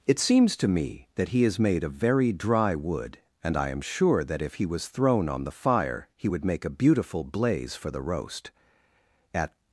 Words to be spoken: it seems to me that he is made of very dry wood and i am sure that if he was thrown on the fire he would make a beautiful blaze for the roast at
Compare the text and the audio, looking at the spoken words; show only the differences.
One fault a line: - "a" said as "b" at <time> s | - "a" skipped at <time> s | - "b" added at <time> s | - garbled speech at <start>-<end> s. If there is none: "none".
none